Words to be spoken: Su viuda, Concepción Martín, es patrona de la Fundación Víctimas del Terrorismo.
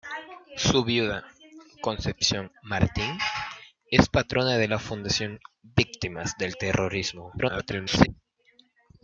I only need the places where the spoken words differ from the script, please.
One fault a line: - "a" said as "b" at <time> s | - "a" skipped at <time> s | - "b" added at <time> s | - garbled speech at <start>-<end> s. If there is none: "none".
- garbled speech at 7.4-8.1 s